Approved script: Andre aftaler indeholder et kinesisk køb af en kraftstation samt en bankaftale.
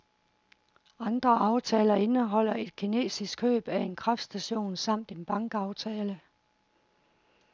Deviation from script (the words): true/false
false